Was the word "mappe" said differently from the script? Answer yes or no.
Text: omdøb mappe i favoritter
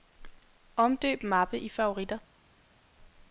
no